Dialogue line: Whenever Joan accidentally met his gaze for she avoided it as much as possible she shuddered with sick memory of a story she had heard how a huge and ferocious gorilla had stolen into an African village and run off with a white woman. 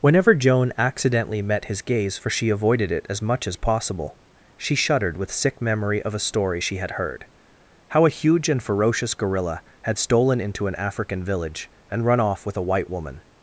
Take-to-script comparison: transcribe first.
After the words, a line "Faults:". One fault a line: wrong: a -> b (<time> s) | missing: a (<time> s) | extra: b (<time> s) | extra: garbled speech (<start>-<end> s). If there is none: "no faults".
Whenever Joan accidentally met his gaze for she avoided it as much as possible she shuddered with sick memory of a story she had heard how a huge and ferocious gorilla had stolen into an African village and run off with a white woman.
Faults:
no faults